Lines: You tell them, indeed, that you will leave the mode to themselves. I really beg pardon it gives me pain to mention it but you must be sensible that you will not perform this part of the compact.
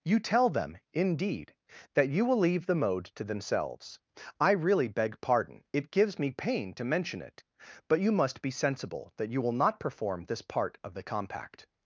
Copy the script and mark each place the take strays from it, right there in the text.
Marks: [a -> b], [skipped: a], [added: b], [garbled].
You tell them, indeed, that you will leave the mode to themselves. I really beg pardon it gives me pain to mention it but you must be sensible that you will not perform this part of the compact.